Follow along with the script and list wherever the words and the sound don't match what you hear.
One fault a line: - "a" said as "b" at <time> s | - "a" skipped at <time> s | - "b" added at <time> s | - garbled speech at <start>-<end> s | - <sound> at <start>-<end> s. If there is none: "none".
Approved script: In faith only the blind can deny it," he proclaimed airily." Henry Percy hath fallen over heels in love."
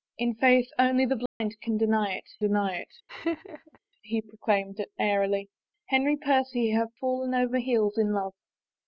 - dropout at 1.3-1.4 s
- "deny it" added at 2.4 s
- laugh at 3.1-3.8 s